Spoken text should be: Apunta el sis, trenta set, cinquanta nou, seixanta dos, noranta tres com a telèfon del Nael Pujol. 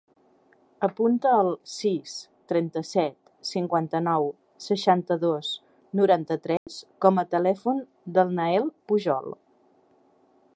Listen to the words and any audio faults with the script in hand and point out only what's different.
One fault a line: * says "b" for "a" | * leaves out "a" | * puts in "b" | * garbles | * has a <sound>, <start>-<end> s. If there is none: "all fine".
* has a dropout, 6.6-6.7 s